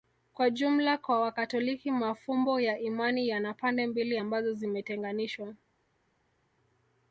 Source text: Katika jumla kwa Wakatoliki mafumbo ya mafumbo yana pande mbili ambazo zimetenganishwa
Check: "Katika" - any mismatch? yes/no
yes